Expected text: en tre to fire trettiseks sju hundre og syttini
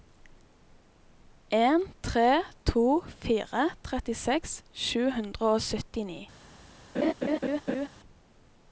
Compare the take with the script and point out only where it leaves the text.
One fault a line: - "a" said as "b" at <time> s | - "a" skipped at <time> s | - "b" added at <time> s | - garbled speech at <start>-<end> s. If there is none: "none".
none